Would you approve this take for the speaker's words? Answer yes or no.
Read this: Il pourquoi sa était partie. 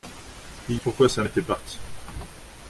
yes